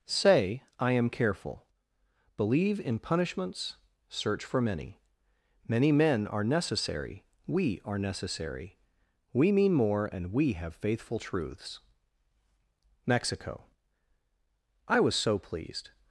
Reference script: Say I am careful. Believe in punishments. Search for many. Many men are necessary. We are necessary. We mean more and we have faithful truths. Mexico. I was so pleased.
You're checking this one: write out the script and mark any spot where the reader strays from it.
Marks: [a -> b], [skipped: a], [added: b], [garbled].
Say I am careful. Believe in punishments. Search for many. Many men are necessary. We are necessary. We mean more and we have faithful truths. Mexico. I was so pleased.